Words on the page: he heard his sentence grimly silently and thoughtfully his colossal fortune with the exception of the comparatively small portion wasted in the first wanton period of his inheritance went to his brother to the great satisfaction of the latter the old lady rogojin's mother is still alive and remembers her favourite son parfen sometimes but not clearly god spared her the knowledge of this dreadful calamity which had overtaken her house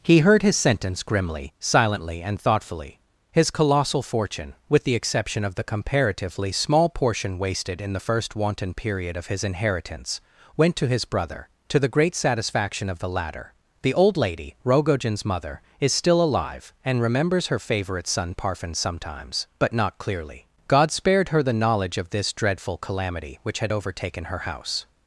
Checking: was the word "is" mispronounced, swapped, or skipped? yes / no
no